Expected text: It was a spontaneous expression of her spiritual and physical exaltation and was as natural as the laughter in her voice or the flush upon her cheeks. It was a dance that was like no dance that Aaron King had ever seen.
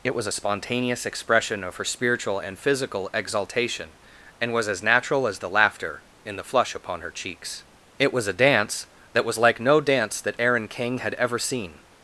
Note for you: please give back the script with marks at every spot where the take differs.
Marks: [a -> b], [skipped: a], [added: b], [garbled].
It was a spontaneous expression of her spiritual and physical exaltation and was as natural as the laughter in [skipped: her voice or] the flush upon her cheeks. It was a dance that was like no dance that Aaron King had ever seen.